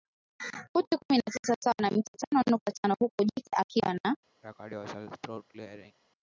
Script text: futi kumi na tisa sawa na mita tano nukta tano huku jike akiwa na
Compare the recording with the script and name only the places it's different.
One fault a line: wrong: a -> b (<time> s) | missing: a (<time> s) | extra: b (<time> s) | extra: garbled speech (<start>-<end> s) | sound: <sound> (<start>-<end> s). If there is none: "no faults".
sound: throat clearing (4.4-5.9 s)